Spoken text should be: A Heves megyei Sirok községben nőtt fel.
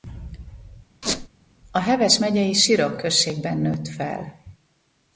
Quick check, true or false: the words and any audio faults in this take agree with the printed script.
false